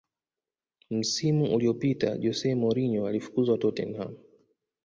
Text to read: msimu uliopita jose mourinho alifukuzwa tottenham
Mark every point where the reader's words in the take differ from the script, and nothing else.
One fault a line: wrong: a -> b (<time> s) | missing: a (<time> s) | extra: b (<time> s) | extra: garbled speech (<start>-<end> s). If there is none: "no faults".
no faults